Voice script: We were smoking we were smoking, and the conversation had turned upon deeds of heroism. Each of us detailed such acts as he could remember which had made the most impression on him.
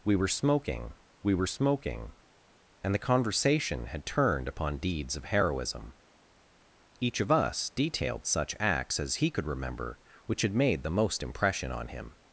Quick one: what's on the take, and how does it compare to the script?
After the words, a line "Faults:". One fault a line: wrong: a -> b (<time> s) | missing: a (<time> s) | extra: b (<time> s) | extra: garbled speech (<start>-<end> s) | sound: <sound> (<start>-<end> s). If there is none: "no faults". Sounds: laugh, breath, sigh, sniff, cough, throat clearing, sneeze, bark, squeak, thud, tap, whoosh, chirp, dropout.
We were smoking we were smoking, and the conversation had turned upon deeds of heroism. Each of us detailed such acts as he could remember which had made the most impression on him.
Faults:
no faults